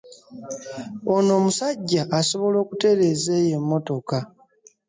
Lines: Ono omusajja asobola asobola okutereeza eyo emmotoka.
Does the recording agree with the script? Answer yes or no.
no